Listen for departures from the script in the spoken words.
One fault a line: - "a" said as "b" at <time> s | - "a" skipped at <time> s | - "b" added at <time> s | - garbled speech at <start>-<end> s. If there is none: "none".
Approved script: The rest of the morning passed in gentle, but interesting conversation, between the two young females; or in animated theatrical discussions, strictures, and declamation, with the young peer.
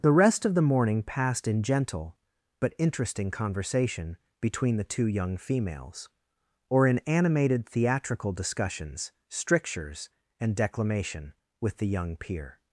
none